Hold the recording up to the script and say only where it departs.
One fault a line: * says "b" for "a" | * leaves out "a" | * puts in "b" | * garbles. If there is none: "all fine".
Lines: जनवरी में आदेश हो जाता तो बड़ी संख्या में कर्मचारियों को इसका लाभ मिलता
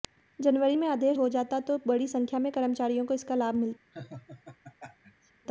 all fine